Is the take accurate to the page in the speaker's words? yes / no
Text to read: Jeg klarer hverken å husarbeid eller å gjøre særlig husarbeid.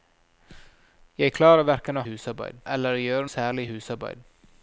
yes